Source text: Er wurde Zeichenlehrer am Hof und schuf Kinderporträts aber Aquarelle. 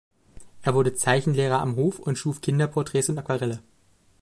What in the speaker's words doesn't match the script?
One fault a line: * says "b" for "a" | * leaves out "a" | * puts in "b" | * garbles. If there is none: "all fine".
* says "und" for "aber"